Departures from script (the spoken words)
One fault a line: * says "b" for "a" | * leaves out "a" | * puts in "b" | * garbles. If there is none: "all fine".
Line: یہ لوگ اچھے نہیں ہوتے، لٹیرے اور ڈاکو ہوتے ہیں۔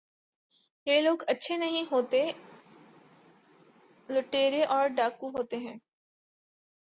all fine